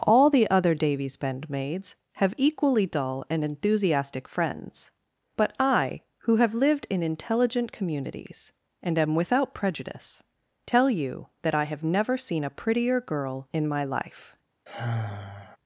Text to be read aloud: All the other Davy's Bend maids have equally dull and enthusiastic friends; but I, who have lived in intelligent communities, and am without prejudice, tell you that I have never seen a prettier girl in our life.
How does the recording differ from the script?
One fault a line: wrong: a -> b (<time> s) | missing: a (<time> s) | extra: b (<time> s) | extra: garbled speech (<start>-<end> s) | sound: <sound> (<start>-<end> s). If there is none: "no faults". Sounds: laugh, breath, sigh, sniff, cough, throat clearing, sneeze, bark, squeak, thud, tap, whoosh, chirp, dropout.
wrong: our -> my (13.7 s)
sound: sigh (14.7-15.6 s)